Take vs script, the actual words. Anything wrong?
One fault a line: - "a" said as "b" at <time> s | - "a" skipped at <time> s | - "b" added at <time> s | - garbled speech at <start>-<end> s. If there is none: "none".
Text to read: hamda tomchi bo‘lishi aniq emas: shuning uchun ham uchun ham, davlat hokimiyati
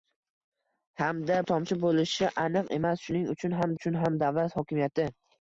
none